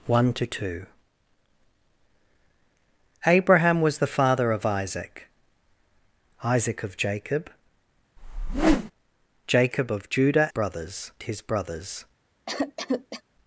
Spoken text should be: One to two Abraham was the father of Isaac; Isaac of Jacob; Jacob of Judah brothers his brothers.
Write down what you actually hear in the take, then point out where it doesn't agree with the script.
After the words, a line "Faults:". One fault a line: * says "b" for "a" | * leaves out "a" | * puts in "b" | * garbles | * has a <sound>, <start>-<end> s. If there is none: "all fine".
One to two Abraham was the father of Isaac; Isaac of Jacob; Jacob of Judah brothers his brothers.
Faults:
* has a whoosh, 8.2-8.9 s
* has a cough, 12.5-13.2 s